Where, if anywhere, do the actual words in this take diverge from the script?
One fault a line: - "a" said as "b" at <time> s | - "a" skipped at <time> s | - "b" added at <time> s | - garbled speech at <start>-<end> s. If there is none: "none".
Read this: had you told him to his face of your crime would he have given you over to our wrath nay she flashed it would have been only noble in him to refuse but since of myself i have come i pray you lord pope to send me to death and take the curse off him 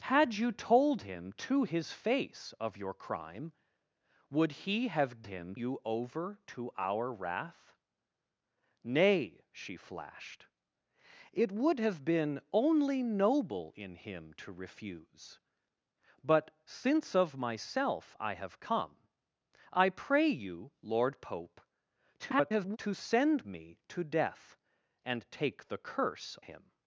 - "given" said as "him" at 5.3 s
- garbled speech at 22.2-22.8 s
- "off" skipped at 26.4 s